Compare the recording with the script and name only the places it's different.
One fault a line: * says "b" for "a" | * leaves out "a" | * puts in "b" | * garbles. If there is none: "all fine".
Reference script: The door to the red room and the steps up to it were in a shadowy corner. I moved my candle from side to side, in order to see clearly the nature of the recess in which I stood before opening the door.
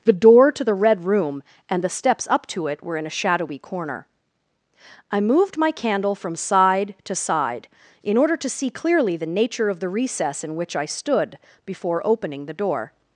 all fine